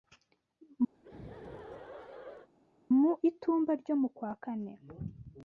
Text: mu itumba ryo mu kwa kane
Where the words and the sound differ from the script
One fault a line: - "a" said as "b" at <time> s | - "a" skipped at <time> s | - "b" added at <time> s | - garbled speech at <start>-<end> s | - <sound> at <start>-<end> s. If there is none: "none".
- laugh at 0.9-2.5 s